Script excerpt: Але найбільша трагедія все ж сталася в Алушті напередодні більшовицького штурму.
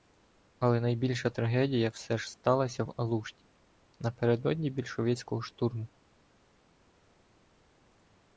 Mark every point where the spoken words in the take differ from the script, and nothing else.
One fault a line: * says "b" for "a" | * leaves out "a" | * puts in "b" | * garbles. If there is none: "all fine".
all fine